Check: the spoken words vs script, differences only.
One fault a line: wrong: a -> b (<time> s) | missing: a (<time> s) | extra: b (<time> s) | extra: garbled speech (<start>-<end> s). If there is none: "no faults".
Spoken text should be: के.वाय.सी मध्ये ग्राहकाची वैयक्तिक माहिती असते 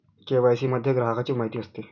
missing: वैयक्तिक (1.3 s)